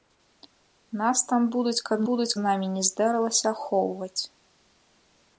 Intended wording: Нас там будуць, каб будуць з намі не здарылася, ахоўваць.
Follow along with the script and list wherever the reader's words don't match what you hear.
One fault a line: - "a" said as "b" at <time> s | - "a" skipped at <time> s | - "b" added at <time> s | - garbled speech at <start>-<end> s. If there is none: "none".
none